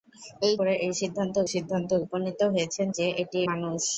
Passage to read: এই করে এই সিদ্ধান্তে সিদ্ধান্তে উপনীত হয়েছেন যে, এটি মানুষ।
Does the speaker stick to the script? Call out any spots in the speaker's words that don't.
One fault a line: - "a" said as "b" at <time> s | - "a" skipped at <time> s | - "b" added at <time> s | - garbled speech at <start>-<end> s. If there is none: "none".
none